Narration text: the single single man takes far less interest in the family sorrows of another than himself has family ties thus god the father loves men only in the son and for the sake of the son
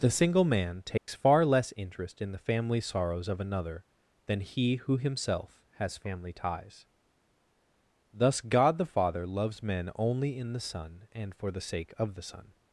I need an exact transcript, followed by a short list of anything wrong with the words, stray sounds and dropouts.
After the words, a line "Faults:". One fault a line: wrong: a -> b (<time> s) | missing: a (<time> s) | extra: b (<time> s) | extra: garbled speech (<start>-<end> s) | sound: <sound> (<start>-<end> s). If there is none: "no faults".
the single man takes far less interest in the family sorrows of another than he who himself has family ties thus god the father loves men only in the son and for the sake of the son
Faults:
missing: single (0.5 s)
sound: dropout (1.0-1.1 s)
extra: he who (4.4 s)